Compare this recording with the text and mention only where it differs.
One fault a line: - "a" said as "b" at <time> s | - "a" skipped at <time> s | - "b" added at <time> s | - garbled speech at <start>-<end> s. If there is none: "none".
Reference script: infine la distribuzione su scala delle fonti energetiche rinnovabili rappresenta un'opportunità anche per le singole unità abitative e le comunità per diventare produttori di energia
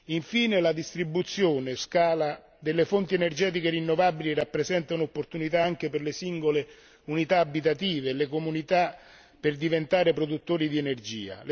- "su" skipped at 1.8 s